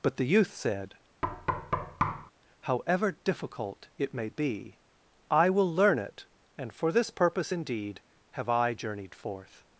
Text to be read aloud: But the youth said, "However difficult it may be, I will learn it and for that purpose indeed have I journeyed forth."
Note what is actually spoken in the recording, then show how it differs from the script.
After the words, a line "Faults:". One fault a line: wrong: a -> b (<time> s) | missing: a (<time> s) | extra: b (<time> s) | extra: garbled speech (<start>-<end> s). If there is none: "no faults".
But the youth said, "However difficult it may be, I will learn it and for this purpose indeed have I journeyed forth."
Faults:
wrong: that -> this (6.9 s)